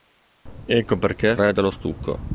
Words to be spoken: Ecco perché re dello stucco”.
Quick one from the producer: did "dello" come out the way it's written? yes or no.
yes